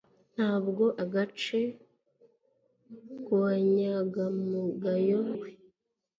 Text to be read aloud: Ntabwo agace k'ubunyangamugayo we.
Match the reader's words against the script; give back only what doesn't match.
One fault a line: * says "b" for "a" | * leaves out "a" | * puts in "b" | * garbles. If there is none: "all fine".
all fine